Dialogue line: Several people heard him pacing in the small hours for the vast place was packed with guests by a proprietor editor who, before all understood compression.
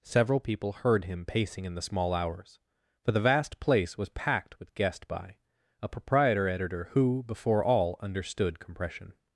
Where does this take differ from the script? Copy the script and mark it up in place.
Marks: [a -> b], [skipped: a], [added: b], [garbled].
Several people heard him pacing in the small hours for the vast place was packed with [guests -> guest] by a proprietor editor who, before all understood compression.